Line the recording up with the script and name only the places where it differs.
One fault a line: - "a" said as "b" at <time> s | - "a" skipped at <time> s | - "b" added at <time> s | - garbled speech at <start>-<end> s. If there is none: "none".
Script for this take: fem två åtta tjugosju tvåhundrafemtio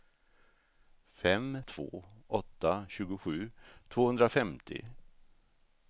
none